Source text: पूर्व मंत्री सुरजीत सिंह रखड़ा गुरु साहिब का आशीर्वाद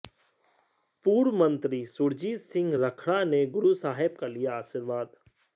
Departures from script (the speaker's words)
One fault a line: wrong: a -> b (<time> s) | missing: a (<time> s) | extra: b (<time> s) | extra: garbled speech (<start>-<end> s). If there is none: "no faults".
extra: ने (3.3 s)
extra: लिया (4.3 s)